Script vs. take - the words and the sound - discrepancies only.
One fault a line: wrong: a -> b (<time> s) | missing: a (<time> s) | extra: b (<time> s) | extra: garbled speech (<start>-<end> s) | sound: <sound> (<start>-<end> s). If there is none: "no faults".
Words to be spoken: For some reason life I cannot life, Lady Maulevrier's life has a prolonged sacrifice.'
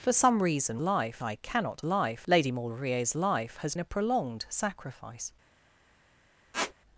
sound: squeak (6.5-6.7 s)